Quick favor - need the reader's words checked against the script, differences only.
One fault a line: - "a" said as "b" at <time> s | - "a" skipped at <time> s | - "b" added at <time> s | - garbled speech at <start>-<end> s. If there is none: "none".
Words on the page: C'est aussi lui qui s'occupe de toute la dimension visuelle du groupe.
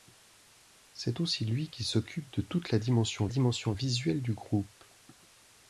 - "dimension" added at 3.3 s